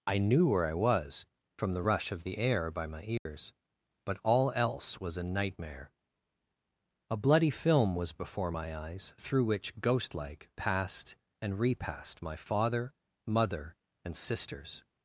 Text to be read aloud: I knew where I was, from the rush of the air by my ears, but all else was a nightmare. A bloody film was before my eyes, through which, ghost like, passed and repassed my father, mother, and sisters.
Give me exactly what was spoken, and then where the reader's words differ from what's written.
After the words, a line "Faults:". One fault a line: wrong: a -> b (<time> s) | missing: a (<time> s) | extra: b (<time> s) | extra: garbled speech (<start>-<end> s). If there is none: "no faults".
I knew where I was, from the rush of the air by my ears, but all else was a nightmare. A bloody film was before my eyes, through which, ghost like, passed and repassed my father, mother, and sisters.
Faults:
no faults